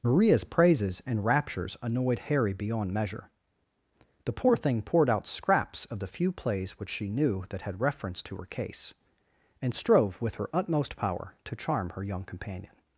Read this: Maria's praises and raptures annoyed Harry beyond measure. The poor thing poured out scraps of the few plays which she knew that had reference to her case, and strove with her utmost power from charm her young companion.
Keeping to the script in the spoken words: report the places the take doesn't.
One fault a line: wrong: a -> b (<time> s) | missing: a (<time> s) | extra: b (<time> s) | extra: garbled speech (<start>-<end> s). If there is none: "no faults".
wrong: from -> to (11.4 s)